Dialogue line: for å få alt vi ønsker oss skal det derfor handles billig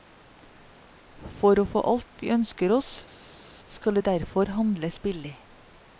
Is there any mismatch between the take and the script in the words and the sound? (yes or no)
no